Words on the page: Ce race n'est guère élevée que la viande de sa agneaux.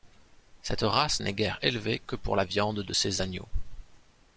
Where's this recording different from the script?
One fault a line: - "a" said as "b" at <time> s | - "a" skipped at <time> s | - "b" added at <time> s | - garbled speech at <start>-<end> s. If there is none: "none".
- "Ce" said as "Cette" at 0.6 s
- "pour" added at 2.1 s
- "sa" said as "ses" at 2.9 s